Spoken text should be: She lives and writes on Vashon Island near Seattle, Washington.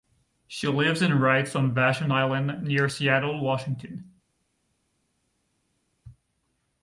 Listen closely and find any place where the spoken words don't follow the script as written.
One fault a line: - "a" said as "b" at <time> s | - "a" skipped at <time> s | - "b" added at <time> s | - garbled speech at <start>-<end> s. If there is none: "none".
none